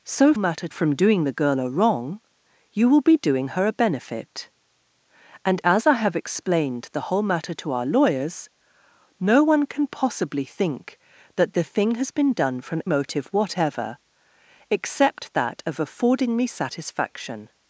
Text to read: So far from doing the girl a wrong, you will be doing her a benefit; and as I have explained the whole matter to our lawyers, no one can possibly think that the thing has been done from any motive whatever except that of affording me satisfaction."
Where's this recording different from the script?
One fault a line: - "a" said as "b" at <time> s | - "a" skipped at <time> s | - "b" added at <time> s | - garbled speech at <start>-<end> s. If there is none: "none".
- "far" said as "matter" at 0.4 s
- "any" skipped at 12.8 s